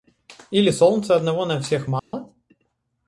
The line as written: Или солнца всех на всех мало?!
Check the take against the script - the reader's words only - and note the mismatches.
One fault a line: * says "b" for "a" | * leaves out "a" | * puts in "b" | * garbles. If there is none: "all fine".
* says "одного" for "всех"